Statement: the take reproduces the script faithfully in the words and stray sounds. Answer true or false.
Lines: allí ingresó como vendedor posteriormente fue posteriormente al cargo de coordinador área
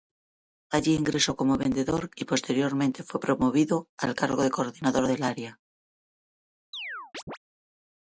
false